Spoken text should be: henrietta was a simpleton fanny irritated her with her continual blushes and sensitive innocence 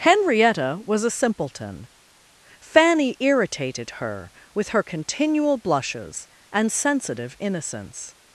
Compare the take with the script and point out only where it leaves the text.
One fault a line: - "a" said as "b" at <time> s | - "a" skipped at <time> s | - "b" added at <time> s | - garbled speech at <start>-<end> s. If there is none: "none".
none